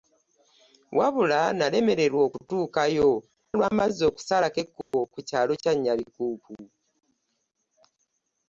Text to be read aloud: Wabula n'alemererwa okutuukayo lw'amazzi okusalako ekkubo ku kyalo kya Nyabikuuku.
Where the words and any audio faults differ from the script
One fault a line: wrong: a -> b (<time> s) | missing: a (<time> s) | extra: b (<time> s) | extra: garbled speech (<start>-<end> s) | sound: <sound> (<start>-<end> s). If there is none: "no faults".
sound: dropout (4.8-4.9 s)